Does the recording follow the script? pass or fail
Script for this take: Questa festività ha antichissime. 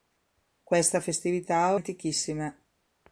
pass